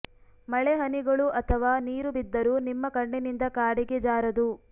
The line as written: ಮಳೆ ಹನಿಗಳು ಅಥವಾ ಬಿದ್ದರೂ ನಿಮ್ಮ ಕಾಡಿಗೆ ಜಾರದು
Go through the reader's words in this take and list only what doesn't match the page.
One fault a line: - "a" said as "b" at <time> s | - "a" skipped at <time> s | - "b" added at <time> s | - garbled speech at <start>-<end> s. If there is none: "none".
- "ನೀರು" added at 1.9 s
- "ಕಣ್ಣಿನಿಂದ" added at 3.0 s